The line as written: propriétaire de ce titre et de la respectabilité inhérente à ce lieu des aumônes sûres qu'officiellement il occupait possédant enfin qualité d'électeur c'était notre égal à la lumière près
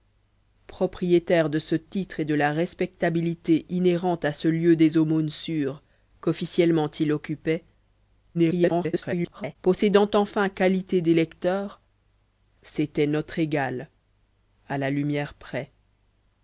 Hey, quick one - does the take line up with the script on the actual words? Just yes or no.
no